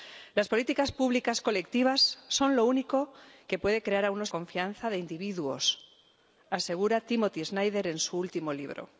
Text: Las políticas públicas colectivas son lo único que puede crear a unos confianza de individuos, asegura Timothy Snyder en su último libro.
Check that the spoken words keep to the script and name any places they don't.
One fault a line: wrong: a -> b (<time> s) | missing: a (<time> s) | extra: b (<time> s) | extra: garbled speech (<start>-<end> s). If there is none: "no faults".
no faults